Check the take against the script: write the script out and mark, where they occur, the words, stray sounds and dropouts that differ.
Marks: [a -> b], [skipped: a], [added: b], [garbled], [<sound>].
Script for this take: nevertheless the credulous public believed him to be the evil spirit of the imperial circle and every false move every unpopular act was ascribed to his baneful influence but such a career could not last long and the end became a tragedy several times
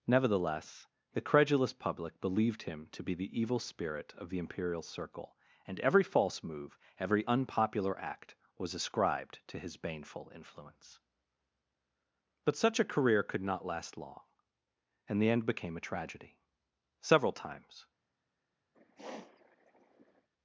nevertheless the credulous public believed him to be the evil spirit of the imperial circle and every false move every unpopular act was ascribed to his baneful influence but such a career could not last long and the end became a tragedy several times [sniff]